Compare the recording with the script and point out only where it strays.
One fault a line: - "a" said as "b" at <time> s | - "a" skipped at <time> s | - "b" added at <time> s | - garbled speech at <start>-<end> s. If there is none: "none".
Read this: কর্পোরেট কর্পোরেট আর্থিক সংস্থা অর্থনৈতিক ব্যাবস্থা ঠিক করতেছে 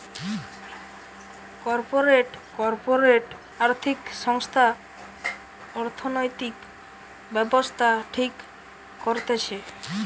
none